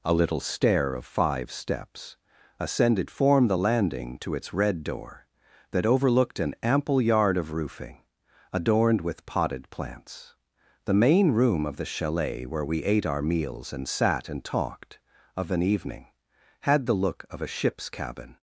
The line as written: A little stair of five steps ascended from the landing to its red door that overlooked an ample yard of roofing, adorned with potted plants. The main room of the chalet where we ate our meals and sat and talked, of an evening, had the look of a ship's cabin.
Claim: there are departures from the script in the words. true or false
true